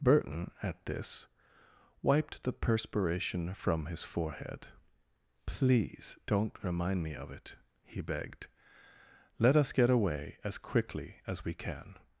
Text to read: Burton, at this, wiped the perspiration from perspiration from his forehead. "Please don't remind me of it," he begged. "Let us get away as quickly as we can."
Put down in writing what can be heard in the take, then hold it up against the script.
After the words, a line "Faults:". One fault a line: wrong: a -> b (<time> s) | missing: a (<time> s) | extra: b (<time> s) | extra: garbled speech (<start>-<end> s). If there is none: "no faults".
Burton, at this, wiped the perspiration from his forehead. "Please don't remind me of it," he begged. "Let us get away as quickly as we can."
Faults:
missing: perspiration from (3.9 s)